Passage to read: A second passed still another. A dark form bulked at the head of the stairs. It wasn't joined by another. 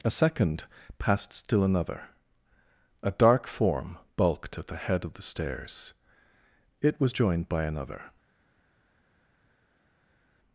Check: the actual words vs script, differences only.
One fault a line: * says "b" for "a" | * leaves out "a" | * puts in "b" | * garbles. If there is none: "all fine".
* says "was" for "wasn't"